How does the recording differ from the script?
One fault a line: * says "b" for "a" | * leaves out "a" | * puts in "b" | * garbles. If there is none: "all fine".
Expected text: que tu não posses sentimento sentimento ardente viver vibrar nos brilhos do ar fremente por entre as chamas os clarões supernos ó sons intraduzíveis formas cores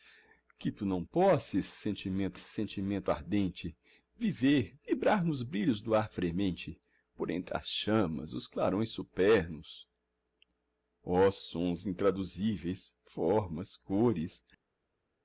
all fine